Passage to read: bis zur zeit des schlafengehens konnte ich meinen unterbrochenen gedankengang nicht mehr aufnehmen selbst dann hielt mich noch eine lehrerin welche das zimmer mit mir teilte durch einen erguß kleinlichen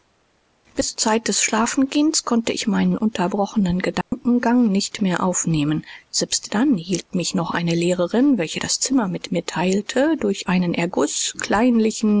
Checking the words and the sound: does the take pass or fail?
fail